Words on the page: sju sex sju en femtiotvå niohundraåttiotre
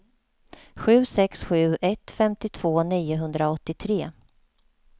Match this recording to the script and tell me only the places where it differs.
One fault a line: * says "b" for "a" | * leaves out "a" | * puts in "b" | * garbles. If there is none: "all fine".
* says "ett" for "en"